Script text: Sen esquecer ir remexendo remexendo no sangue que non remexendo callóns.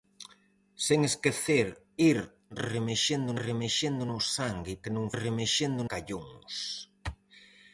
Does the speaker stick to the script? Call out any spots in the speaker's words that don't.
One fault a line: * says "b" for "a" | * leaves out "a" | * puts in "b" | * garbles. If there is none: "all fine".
all fine